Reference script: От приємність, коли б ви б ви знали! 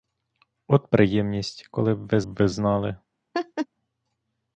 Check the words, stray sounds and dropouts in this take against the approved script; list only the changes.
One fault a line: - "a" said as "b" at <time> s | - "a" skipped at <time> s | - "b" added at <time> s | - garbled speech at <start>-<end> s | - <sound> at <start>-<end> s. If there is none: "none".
- laugh at 3.3-3.7 s